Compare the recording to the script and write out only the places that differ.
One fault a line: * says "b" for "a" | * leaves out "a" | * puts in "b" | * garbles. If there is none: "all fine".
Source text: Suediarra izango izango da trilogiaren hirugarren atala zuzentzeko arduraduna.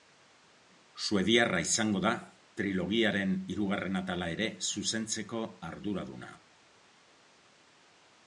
* leaves out "izango"
* puts in "ere"